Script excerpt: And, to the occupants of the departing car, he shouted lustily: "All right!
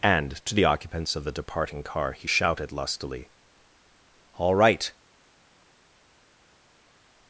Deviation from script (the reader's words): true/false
false